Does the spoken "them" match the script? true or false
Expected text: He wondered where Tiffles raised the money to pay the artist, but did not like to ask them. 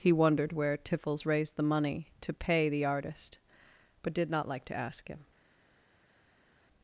false